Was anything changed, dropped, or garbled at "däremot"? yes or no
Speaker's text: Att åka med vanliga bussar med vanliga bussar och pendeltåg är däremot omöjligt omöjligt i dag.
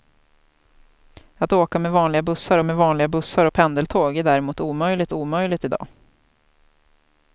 no